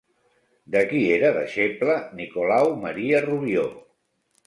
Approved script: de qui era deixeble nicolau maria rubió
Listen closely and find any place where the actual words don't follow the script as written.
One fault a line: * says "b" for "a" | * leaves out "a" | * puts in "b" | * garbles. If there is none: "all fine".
all fine